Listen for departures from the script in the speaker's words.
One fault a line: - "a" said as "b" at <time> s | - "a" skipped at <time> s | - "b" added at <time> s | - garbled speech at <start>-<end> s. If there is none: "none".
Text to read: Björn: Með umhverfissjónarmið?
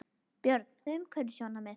none